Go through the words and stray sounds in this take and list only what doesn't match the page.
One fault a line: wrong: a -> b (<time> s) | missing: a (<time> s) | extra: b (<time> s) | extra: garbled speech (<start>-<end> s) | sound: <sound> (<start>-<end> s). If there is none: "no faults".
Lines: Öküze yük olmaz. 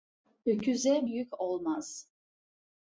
no faults